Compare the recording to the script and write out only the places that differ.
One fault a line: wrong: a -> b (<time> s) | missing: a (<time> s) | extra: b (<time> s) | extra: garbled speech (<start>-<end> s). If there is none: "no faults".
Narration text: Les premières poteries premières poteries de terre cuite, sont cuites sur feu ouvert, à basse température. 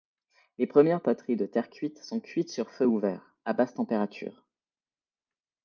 missing: premières poteries (1.4 s)